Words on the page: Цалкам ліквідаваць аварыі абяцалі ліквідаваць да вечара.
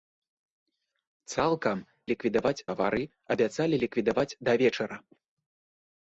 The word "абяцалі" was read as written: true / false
true